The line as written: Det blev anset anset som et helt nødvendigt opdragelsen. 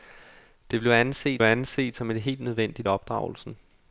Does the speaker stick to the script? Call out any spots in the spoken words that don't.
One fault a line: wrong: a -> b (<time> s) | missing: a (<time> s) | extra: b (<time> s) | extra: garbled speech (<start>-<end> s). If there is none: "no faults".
no faults